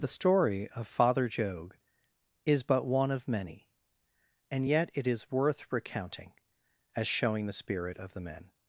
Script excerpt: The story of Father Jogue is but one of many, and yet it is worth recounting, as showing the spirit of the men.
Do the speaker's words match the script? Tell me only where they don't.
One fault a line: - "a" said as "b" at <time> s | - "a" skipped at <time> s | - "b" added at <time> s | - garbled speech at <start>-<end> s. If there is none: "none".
none